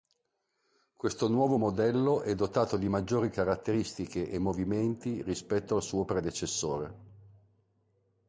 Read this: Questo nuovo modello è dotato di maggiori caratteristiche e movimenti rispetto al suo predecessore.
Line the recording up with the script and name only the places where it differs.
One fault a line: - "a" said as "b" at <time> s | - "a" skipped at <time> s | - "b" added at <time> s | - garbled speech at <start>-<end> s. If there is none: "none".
none